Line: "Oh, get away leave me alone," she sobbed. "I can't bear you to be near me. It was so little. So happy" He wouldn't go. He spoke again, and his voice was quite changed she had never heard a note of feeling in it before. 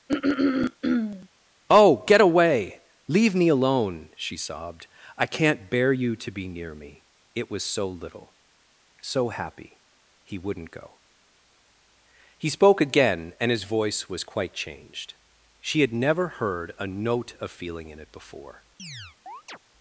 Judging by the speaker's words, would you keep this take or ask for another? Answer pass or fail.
pass